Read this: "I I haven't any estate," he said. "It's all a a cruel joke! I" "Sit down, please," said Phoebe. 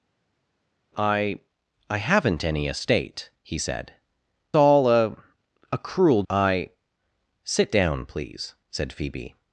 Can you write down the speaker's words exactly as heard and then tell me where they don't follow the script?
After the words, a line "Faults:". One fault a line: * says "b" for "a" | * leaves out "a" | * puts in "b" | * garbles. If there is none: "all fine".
"I I haven't any estate," he said. "All a a cruel! I" "Sit down, please," said Phoebe.
Faults:
* leaves out "It's"
* leaves out "joke"